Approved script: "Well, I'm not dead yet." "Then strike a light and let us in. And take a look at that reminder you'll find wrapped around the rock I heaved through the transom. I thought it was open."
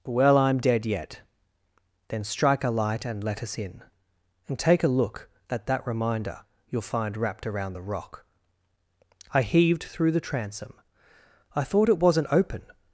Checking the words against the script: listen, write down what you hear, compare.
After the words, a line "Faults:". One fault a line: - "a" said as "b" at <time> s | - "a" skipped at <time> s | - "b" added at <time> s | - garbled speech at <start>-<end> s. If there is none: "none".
"Well, I'm dead yet." "Then strike a light and let us in. And take a look at that reminder you'll find wrapped around the rock I heaved through the transom. I thought it wasn't open."
Faults:
- "not" skipped at 0.6 s
- "was" said as "wasn't" at 12.0 s